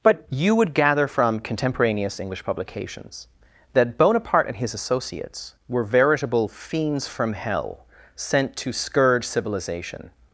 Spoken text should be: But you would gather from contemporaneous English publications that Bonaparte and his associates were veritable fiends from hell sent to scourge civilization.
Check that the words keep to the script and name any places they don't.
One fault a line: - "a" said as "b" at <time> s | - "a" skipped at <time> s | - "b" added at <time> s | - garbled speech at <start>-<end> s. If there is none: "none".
none